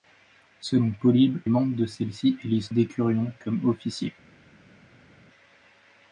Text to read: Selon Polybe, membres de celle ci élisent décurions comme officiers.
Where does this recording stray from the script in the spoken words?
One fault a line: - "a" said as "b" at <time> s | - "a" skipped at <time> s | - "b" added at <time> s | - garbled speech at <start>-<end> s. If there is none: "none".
none